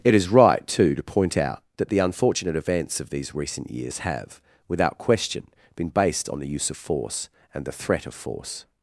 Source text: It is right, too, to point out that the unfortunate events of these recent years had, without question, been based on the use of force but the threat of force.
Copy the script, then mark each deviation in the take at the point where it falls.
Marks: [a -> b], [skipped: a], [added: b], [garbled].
It is right, too, to point out that the unfortunate events of these recent years [had, -> have] without question, been based on the use of force [but -> and] the threat of force.